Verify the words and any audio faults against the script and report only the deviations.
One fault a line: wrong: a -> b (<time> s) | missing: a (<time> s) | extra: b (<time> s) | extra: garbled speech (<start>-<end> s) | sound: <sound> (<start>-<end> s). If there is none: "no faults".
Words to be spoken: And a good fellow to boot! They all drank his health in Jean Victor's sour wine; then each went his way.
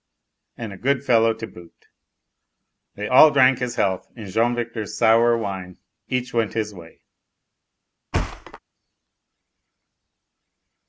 missing: then (5.8 s)
sound: thud (8.1-8.6 s)